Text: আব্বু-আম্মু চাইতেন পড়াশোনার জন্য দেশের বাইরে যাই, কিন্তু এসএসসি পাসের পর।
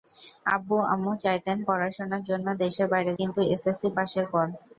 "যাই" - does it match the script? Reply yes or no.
no